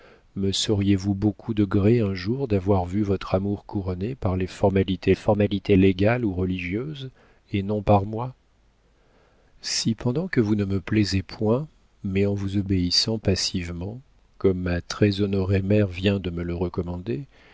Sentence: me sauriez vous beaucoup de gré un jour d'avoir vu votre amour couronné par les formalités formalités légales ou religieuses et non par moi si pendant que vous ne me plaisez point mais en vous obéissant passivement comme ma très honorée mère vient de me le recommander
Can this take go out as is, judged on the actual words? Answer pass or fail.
pass